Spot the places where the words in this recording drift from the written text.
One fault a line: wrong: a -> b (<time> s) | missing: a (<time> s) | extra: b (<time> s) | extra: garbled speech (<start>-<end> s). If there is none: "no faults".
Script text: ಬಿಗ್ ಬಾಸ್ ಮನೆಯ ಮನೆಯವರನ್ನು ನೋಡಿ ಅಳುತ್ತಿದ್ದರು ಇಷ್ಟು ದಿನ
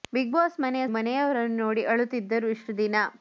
no faults